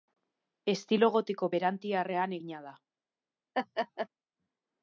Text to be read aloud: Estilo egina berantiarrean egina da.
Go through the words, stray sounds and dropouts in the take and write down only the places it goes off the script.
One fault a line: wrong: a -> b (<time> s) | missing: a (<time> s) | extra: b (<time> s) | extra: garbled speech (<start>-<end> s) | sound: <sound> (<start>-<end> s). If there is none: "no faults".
wrong: egina -> gotiko (1.2 s)
sound: laugh (3.5-4.1 s)